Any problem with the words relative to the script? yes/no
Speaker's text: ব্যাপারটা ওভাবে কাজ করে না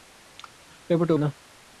yes